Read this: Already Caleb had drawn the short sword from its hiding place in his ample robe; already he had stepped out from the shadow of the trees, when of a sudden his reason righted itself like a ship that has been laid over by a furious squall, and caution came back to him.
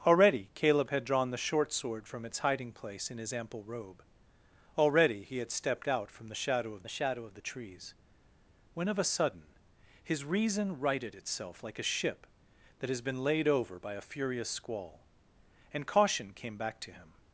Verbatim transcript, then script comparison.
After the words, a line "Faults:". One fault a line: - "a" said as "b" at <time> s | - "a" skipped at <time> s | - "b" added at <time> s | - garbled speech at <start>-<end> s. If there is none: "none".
Already Caleb had drawn the short sword from its hiding place in his ample robe; already he had stepped out from the shadow of the shadow of the trees, when of a sudden his reason righted itself like a ship that has been laid over by a furious squall, and caution came back to him.
Faults:
- "shadow of the" added at 6.9 s